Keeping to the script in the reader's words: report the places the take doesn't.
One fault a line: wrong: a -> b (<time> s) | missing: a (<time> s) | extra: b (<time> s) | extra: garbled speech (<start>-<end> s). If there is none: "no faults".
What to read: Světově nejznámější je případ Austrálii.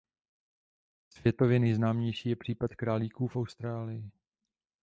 extra: králíků v (2.8 s)